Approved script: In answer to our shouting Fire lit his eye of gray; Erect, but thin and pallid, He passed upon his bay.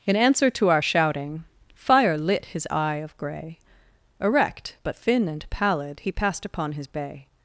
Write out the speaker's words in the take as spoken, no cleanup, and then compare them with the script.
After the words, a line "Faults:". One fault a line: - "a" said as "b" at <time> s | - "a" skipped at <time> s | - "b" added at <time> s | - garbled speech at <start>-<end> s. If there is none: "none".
In answer to our shouting Fire lit his eye of gray; Erect, but thin and pallid, He passed upon his bay.
Faults:
none